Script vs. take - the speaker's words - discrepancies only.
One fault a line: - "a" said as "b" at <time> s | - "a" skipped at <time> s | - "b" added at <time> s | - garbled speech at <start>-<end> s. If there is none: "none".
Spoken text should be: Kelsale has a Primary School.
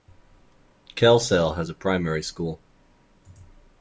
none